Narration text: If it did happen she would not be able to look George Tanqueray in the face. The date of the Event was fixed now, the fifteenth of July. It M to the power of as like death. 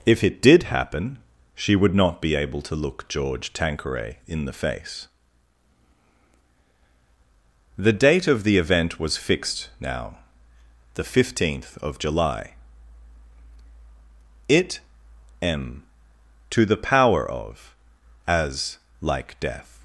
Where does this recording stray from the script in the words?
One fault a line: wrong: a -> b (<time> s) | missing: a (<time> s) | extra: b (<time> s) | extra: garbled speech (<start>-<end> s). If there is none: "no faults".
no faults